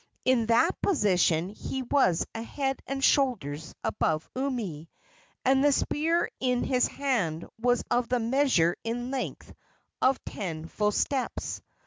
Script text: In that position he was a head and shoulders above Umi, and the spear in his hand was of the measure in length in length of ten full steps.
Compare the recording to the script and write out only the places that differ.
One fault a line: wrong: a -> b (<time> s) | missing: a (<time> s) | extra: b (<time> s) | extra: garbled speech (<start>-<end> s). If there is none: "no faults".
missing: in length (9.5 s)